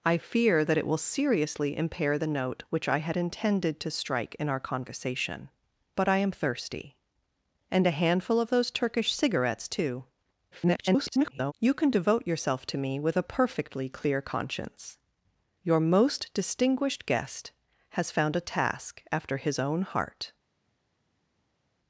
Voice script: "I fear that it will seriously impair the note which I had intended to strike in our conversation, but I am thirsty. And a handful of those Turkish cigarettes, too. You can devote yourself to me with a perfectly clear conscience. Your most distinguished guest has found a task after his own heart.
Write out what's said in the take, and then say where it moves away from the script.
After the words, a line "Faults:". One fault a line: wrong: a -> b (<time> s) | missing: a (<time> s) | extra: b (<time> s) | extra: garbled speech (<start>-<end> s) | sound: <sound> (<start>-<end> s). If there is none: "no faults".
"I fear that it will seriously impair the note which I had intended to strike in our conversation, but I am thirsty. And a handful of those Turkish cigarettes, too. [garbled] You can devote yourself to me with a perfectly clear conscience. Your most distinguished guest has found a task after his own heart.
Faults:
extra: garbled speech (10.5-11.5 s)